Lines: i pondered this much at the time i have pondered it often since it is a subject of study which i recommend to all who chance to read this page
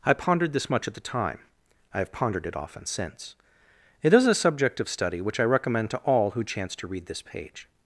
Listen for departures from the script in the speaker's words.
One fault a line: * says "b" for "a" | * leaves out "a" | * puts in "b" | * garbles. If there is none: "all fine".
all fine